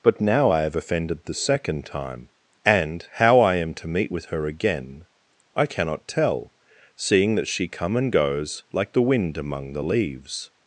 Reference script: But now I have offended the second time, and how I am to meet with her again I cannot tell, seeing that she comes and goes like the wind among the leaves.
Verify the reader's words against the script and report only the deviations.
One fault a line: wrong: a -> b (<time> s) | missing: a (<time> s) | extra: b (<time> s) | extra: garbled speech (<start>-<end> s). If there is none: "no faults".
wrong: comes -> come (7.7 s)